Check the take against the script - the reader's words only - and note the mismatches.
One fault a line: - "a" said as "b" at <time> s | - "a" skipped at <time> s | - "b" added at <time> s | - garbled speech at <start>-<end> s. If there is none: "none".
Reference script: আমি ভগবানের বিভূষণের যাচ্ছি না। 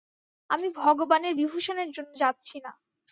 - "জন্য" added at 1.9 s